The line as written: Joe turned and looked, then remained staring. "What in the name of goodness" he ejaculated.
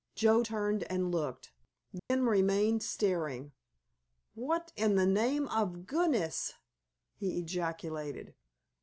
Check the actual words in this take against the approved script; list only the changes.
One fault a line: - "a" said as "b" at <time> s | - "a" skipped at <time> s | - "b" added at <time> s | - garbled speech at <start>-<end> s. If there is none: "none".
none